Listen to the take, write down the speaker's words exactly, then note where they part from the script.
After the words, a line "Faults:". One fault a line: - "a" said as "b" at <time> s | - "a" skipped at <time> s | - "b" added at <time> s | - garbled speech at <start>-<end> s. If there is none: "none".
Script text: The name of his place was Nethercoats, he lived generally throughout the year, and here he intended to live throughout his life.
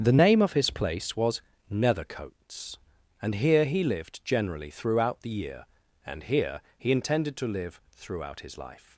The name of his place was Nethercoats, and here he lived generally throughout the year, and here he intended to live throughout his life.
Faults:
- "and here" added at 3.2 s